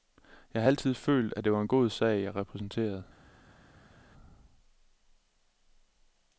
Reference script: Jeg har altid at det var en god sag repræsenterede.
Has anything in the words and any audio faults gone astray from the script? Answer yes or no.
yes